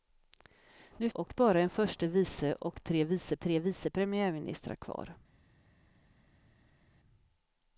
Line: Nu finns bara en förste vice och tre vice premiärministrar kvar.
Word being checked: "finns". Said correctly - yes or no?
no